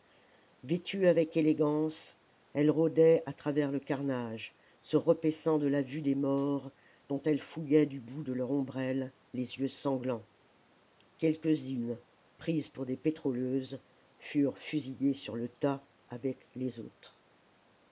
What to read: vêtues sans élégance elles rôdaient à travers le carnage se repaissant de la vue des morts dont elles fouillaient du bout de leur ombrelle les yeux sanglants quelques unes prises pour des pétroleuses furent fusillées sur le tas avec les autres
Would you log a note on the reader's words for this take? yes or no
yes